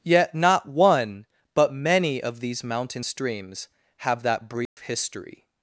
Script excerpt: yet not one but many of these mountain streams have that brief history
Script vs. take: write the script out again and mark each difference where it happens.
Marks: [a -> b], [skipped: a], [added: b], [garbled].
yet not one but many of these mountain streams have that brief history